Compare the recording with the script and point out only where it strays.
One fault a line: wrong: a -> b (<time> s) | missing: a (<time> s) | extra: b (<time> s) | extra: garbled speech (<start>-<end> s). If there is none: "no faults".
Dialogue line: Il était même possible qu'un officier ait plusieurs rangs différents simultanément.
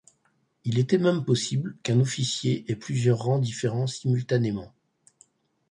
no faults